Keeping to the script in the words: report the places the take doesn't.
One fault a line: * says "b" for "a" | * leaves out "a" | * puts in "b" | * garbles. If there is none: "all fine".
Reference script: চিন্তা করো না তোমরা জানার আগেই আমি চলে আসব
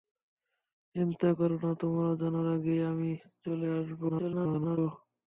* garbles